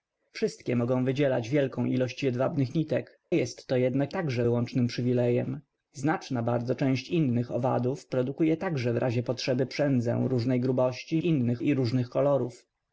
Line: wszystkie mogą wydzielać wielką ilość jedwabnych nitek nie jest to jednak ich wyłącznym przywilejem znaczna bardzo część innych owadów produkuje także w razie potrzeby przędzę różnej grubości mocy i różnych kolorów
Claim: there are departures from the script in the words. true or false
true